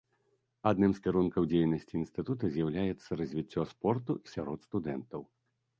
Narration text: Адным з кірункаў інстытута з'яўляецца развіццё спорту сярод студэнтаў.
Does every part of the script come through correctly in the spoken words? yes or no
no